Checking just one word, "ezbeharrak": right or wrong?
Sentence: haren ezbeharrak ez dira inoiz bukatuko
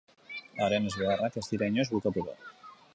right